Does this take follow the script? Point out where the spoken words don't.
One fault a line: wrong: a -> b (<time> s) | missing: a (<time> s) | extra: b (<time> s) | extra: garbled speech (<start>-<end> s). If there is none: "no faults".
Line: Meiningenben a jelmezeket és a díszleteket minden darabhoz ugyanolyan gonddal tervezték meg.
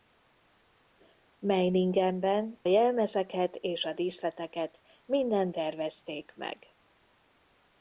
missing: a (2.6 s)
missing: darabhoz ugyanolyan gonddal (5.5 s)